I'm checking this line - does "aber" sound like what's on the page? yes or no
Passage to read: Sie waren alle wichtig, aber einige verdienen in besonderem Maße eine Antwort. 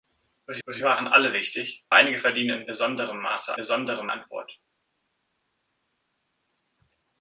no